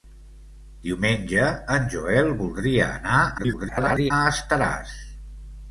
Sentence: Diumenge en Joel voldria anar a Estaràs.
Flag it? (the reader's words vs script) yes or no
yes